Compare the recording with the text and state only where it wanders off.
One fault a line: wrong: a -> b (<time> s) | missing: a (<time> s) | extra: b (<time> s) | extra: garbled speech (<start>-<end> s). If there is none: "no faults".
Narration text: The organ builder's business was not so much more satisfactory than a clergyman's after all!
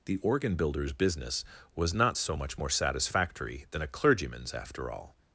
no faults